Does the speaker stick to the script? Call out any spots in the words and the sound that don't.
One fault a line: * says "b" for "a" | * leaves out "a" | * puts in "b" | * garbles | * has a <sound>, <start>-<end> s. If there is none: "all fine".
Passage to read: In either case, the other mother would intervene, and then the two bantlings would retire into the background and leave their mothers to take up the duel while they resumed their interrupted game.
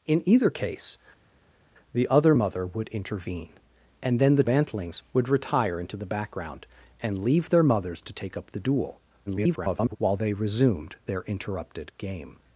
* leaves out "two"
* garbles